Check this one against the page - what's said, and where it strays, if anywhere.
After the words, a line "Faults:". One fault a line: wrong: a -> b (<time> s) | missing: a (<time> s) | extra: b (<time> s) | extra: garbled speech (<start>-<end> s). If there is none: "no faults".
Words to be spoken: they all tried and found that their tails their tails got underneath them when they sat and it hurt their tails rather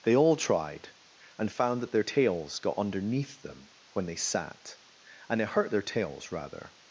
they all tried and found that their tails got underneath them when they sat and it hurt their tails rather
Faults:
missing: their tails (2.6 s)